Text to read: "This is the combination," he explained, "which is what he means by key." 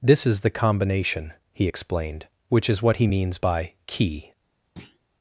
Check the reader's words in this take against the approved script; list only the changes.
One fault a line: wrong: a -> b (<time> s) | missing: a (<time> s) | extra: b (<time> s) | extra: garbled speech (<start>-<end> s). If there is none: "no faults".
no faults